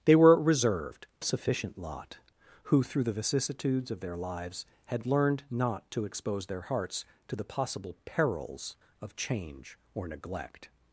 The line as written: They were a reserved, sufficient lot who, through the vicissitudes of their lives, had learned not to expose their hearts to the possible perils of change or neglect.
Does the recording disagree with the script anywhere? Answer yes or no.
no